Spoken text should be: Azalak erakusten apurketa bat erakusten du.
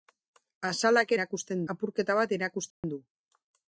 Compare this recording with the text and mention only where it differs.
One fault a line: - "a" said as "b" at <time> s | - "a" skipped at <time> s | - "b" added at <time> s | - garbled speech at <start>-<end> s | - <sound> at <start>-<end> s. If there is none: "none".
- dropout at 2.7-2.8 s